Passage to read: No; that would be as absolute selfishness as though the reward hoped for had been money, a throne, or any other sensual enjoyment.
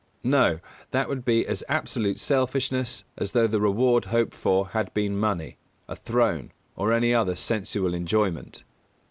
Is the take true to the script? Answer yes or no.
yes